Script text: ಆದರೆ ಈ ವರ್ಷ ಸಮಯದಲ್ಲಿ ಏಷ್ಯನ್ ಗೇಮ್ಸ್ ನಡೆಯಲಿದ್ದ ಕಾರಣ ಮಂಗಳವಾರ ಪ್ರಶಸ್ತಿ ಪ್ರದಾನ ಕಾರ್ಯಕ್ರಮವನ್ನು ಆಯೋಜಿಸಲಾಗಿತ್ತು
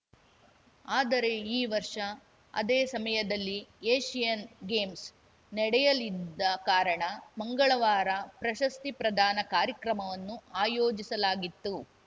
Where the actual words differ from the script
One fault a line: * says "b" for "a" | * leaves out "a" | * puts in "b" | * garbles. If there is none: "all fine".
* puts in "ಅದೇ"